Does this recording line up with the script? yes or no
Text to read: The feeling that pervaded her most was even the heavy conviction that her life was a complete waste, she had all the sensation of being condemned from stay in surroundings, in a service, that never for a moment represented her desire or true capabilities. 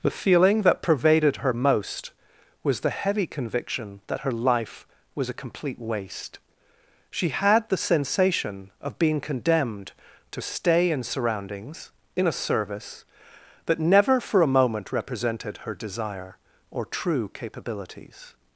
no